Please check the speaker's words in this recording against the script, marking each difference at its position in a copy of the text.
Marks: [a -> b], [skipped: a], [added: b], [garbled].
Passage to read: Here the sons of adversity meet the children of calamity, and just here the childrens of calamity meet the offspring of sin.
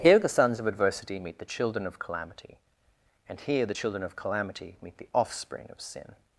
Here the sons of adversity meet the children of calamity, and [skipped: just] here the [childrens -> children] of calamity meet the offspring of sin.